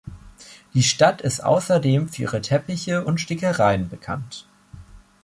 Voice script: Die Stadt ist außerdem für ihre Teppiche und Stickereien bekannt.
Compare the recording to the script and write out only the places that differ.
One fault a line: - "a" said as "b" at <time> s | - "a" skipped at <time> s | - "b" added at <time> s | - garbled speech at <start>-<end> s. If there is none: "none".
none